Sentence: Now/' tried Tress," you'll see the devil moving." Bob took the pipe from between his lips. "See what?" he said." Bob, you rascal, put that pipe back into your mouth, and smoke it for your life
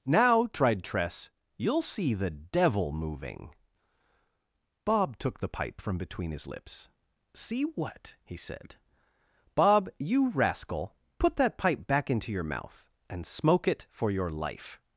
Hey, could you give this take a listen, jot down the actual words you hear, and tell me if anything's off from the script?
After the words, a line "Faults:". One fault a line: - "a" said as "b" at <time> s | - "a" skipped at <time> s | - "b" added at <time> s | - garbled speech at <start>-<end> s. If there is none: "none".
Now/' tried Tress," you'll see the devil moving." Bob took the pipe from between his lips. "See what?" he said." Bob, you rascal, put that pipe back into your mouth, and smoke it for your life
Faults:
none